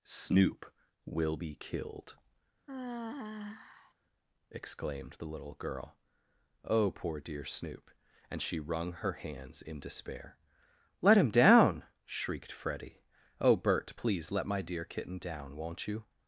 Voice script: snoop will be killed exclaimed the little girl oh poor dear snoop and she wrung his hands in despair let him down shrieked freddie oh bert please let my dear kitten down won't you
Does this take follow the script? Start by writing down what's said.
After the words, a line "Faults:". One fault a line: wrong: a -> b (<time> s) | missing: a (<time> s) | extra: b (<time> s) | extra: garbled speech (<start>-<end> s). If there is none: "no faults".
snoop will be killed exclaimed the little girl oh poor dear snoop and she wrung her hands in despair let him down shrieked freddie oh bert please let my dear kitten down won't you
Faults:
wrong: his -> her (8.9 s)